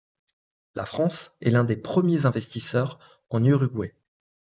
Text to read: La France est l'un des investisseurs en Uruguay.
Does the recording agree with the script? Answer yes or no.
no